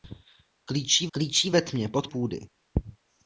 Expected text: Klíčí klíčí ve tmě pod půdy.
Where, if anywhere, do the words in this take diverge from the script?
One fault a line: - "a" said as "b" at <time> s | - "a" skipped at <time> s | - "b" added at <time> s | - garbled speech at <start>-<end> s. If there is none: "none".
none